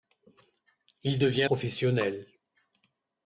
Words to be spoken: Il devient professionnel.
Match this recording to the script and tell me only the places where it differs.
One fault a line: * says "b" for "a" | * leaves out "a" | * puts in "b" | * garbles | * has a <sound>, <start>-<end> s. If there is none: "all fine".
all fine